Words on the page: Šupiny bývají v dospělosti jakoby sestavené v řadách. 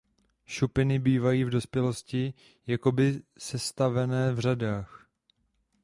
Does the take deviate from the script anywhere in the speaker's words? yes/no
no